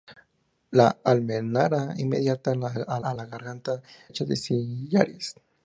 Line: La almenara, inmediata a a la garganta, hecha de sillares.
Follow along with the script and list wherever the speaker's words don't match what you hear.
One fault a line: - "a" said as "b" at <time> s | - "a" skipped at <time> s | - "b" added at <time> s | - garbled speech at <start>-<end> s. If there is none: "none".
none